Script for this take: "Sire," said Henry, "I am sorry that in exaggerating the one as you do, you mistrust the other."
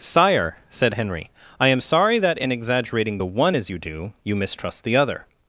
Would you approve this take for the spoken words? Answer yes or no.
yes